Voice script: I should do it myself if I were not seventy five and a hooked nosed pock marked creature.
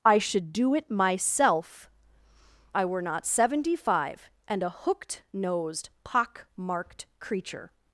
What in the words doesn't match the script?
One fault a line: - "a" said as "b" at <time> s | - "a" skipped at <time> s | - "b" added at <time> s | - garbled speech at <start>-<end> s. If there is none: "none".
- "if" skipped at 1.9 s